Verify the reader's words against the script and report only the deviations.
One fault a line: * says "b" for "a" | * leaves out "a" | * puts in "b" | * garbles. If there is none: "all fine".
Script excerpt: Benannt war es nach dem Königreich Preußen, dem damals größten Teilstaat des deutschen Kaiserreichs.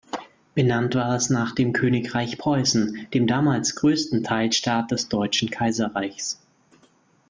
all fine